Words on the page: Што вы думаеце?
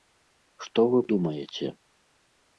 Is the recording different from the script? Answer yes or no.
no